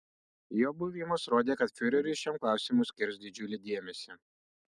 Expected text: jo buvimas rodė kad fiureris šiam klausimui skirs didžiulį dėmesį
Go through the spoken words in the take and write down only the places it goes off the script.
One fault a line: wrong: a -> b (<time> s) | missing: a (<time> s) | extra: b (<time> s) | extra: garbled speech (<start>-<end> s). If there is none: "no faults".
no faults